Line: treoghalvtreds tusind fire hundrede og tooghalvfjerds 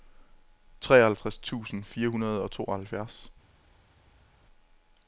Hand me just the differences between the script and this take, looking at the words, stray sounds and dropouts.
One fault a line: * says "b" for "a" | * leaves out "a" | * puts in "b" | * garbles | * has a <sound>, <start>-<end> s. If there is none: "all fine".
all fine